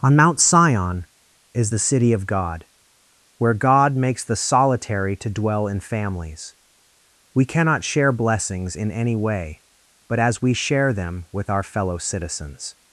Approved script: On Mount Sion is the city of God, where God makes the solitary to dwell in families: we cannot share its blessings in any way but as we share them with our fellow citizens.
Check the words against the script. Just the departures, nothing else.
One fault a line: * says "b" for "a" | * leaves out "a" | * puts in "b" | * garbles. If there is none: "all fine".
* leaves out "its"